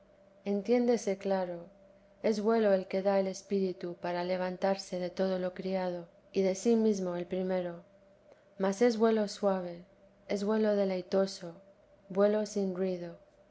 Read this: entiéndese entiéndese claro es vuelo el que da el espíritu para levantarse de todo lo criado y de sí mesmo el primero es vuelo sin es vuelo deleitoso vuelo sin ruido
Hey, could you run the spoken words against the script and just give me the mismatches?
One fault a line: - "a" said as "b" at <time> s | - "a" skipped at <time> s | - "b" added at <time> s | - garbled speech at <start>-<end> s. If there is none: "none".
- "entiéndese" skipped at 1.2 s
- "mas" added at 8.6 s
- "sin" said as "suave" at 9.3 s